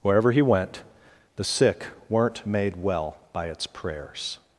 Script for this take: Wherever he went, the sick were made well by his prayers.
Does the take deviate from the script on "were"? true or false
true